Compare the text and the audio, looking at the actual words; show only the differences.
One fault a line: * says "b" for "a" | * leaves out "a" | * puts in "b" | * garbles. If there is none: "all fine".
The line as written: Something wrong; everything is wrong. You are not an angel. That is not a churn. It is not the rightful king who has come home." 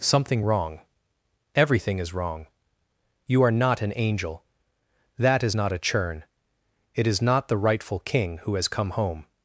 all fine